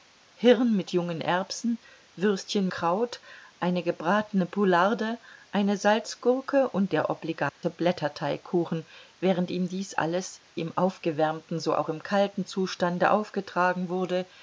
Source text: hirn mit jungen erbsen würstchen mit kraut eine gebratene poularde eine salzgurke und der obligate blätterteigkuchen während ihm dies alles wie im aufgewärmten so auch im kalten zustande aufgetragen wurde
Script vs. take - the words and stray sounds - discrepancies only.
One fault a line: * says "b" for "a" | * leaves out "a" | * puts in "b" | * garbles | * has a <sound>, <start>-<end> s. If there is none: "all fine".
* leaves out "mit"
* has a dropout, 7.5-7.6 s
* leaves out "wie"